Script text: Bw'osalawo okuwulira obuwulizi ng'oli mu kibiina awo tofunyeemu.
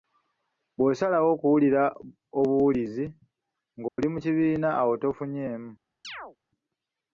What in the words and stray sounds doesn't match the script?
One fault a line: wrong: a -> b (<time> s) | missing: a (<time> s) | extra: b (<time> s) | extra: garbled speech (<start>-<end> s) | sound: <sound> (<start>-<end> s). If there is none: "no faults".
sound: dropout (3.9-4.0 s)
sound: chirp (6.0-6.4 s)